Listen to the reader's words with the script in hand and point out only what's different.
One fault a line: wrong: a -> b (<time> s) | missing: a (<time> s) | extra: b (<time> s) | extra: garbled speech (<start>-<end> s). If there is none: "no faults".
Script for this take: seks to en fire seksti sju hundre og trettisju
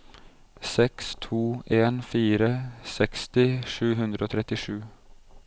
no faults